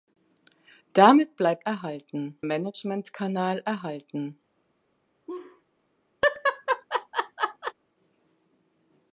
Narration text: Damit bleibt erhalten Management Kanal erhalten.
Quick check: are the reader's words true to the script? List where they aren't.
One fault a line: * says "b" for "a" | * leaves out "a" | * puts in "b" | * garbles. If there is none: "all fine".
all fine